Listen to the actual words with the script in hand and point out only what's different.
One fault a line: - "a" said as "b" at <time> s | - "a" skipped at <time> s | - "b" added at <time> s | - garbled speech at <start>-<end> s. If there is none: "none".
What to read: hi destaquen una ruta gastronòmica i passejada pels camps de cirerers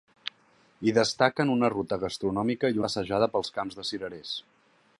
none